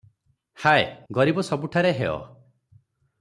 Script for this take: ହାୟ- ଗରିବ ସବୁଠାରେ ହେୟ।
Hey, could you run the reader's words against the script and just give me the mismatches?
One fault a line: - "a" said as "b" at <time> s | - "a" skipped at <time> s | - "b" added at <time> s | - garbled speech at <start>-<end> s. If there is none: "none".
none